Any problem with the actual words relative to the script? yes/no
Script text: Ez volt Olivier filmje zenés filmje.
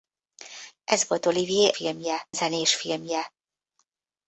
no